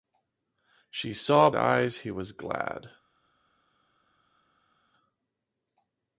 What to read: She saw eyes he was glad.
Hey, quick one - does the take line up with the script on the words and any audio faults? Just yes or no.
yes